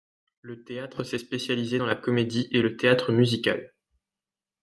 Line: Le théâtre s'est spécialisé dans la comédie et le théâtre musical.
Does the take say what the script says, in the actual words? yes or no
yes